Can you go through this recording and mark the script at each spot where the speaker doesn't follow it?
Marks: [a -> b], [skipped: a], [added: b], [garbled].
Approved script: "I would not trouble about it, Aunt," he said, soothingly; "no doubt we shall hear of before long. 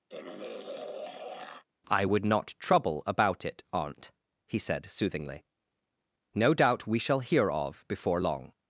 "I would not trouble about it, Aunt," he said, soothingly; "no doubt we shall hear of before long.